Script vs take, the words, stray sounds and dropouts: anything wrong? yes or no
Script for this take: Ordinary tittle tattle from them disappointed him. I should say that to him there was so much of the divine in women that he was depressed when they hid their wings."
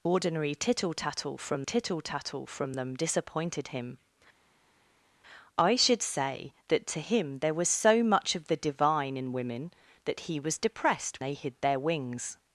yes